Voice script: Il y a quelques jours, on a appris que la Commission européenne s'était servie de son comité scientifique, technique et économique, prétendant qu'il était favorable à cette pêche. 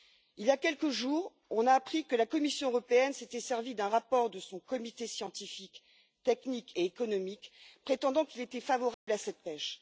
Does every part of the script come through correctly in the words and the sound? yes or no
no